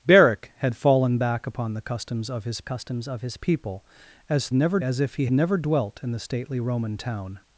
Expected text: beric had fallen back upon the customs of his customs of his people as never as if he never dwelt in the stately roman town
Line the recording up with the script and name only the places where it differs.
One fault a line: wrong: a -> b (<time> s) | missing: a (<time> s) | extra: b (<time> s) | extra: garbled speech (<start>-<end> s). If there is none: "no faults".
no faults